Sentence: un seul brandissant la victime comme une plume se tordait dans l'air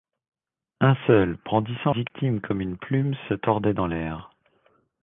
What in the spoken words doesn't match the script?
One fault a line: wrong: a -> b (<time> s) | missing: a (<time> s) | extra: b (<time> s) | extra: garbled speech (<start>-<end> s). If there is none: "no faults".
missing: la (1.9 s)